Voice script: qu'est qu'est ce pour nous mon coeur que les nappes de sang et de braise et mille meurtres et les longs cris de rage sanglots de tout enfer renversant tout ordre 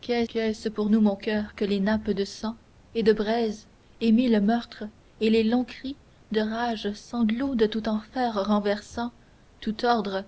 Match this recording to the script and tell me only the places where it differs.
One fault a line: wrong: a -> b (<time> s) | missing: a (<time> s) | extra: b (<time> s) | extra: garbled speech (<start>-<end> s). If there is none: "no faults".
no faults